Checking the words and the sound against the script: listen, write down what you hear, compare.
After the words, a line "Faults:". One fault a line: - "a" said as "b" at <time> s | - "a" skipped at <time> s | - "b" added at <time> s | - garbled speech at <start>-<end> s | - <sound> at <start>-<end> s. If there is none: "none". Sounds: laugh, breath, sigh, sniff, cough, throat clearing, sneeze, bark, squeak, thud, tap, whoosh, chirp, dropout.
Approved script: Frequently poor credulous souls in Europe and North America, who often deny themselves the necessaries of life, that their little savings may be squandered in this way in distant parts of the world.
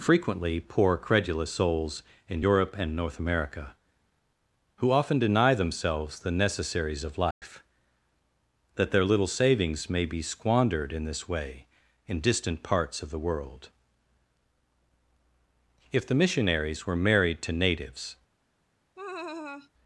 Frequently poor credulous souls in Europe and North America, who often deny themselves the necessaries of life, that their little savings may be squandered in this way in distant parts of the world. If the missionaries were married to natives
Faults:
- dropout at 7.3-7.4 s
- "If the missionaries were married to natives" added at 15.9 s
- laugh at 18.9-19.7 s